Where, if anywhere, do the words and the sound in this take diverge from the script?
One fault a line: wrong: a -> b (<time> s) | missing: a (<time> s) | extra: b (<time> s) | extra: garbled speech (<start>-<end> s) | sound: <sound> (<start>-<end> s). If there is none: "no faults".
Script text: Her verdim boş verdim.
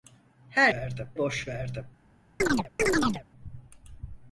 sound: chirp (2.4-3.2 s)